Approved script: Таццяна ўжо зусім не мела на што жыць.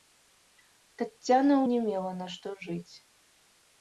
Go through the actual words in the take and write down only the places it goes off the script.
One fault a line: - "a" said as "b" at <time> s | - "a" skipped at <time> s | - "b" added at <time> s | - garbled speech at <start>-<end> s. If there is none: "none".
- "ўжо зусім" skipped at 1.6 s